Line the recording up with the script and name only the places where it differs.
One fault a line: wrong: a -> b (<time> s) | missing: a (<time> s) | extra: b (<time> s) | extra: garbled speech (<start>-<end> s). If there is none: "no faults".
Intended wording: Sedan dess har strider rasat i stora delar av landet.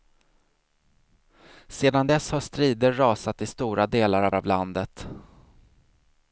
extra: av (4.3 s)